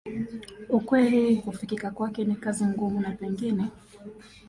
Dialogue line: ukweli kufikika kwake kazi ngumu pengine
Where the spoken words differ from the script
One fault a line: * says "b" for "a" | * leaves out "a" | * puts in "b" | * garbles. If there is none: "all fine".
* puts in "ni"
* puts in "na"